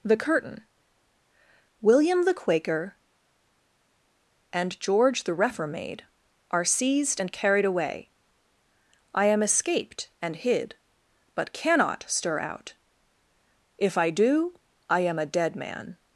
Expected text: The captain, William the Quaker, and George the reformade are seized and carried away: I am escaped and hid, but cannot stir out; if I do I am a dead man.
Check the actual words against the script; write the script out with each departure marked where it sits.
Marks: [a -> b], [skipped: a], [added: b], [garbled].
The [captain, -> curtain] William the Quaker, and George the reformade are seized and carried away: I am escaped and hid, but cannot stir out; if I do I am a dead man.